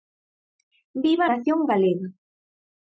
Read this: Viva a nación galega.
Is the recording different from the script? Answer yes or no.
no